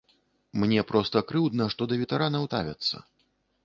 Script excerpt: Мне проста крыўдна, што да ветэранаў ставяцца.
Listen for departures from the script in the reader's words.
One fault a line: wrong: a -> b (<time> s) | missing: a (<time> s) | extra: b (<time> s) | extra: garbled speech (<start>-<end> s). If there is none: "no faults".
no faults